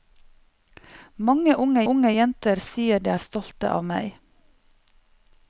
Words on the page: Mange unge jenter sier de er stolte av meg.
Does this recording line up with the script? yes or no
no